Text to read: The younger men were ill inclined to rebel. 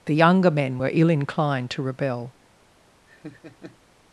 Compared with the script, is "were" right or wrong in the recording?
right